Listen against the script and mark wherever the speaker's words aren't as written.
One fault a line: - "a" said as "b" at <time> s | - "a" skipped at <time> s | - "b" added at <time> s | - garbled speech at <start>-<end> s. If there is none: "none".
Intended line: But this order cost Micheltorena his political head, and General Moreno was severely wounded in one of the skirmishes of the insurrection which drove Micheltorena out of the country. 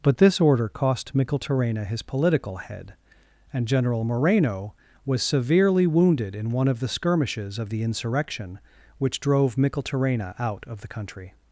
none